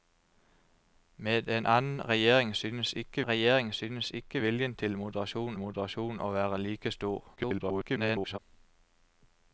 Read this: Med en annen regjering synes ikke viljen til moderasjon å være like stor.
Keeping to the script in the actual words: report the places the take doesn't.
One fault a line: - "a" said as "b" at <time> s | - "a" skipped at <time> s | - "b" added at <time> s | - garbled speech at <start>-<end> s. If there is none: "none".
- "regjering synes ikke" added at 3.2 s
- "moderasjon" added at 5.6 s
- garbled speech at 7.4-8.4 s